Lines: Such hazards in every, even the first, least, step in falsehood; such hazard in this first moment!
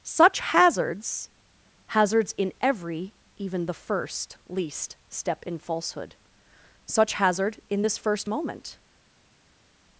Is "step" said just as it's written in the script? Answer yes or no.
yes